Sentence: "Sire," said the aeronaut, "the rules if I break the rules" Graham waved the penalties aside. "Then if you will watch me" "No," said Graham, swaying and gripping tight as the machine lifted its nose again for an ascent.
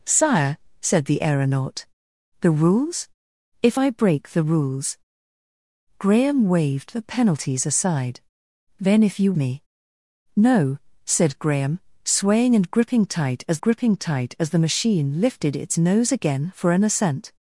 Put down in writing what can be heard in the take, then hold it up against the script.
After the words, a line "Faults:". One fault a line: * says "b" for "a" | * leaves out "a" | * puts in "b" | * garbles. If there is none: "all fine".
"Sire," said the aeronaut, "the rules if I break the rules" Graham waved the penalties aside. "Then if you me" "No," said Graham, swaying and gripping tight as gripping tight as the machine lifted its nose again for an ascent.
Faults:
* leaves out "will watch"
* puts in "gripping tight as"